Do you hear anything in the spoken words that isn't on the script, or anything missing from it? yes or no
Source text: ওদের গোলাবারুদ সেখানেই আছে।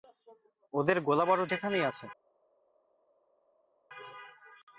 no